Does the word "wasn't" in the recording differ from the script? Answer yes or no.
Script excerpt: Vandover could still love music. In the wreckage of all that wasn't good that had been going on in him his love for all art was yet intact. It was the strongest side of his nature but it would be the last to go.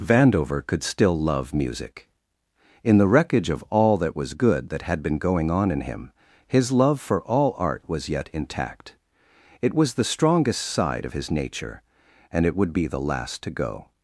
yes